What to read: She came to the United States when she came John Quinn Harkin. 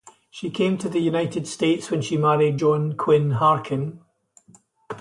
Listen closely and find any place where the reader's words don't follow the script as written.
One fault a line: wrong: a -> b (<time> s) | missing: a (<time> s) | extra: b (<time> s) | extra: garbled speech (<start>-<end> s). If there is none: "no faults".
wrong: came -> married (2.2 s)